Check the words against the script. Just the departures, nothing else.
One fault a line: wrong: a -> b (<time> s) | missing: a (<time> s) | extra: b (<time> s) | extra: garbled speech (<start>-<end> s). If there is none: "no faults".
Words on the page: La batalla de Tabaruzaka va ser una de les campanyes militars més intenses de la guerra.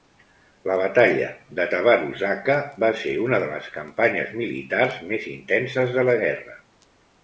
no faults